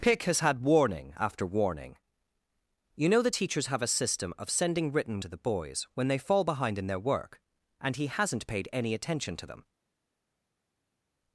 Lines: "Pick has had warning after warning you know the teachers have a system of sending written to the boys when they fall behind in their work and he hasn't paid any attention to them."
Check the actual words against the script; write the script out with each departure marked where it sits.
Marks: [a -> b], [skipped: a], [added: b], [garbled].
"Pick has had warning after warning you know the teachers have a system of sending written to the boys when they fall behind in their work and he hasn't paid any attention to them."